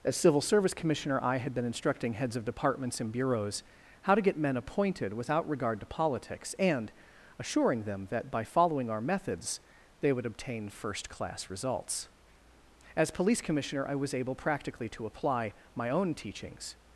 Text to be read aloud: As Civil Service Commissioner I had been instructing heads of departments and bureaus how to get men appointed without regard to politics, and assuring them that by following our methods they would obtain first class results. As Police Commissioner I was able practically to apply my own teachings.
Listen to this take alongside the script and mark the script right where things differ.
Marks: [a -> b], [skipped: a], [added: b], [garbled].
As Civil Service Commissioner I had been instructing heads of departments and bureaus how to get men appointed without regard to politics, and assuring them that by following our methods they would obtain first class results. As Police Commissioner I was able practically to apply my own teachings.